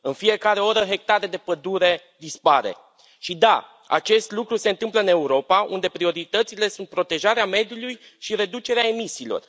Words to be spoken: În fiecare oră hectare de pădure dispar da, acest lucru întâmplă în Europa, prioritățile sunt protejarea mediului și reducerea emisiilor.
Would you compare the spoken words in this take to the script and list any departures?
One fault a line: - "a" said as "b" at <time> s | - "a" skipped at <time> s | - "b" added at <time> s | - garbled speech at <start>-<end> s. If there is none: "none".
- "și" added at 3.2 s
- "se" added at 4.5 s
- "unde" added at 5.7 s